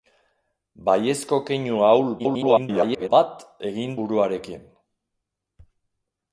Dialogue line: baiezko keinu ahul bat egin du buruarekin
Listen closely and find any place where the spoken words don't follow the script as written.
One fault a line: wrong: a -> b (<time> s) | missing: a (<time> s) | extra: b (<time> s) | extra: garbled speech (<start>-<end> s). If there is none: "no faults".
extra: garbled speech (2.2-3.1 s)
missing: du (4.0 s)